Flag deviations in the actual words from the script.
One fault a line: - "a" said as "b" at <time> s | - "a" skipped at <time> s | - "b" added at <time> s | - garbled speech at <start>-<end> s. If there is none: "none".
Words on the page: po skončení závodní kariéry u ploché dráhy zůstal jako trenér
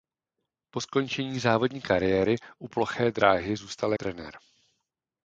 - "jako" skipped at 3.9 s